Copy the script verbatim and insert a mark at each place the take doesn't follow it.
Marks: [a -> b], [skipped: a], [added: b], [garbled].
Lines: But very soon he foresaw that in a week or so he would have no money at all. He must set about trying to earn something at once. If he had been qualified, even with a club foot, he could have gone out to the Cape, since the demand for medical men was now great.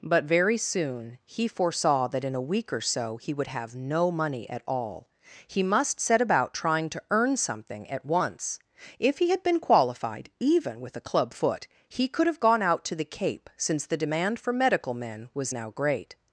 But very soon he foresaw that in a week or so he would have no money at all. He must set about trying to earn something at once. If he had been qualified, even with a club foot, he could have gone out to the Cape, since the demand for medical men was now great.